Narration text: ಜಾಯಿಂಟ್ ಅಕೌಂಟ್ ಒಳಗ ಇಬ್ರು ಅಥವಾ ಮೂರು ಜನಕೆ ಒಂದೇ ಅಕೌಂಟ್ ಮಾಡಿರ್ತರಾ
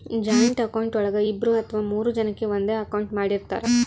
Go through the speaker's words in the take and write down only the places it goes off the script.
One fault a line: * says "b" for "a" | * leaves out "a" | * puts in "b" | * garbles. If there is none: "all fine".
all fine